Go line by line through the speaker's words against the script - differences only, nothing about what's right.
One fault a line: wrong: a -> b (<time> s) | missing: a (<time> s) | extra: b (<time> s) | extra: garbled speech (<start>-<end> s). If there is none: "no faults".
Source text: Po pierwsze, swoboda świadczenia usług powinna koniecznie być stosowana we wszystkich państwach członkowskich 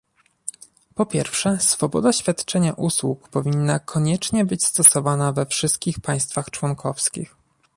no faults